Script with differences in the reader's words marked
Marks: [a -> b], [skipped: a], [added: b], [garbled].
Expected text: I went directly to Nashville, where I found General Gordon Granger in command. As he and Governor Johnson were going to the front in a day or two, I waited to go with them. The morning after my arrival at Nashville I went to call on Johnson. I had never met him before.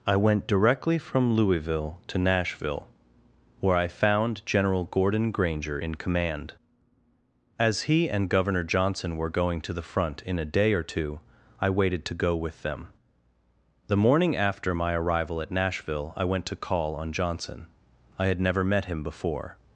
I went directly [added: from Louisville] to Nashville, where I found General Gordon Granger in command. As he and Governor Johnson were going to the front in a day or two, I waited to go with them. The morning after my arrival at Nashville I went to call on Johnson. I had never met him before.